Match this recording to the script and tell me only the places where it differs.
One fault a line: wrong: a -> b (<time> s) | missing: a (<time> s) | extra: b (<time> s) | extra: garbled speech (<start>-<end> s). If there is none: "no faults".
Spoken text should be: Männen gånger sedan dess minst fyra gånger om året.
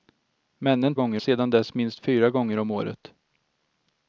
no faults